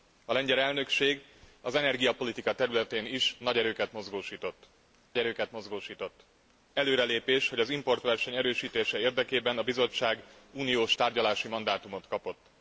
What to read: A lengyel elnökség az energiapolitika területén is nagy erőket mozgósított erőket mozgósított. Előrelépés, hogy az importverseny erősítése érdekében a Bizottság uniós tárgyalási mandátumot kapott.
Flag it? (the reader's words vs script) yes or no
no